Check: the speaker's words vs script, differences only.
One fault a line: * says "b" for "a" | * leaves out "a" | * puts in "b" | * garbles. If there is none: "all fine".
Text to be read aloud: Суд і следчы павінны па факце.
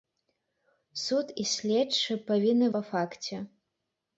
all fine